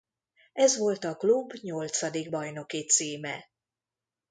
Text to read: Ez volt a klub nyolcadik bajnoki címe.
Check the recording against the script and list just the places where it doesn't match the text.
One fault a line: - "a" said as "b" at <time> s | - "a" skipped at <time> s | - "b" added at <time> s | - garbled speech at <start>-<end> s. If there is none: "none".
none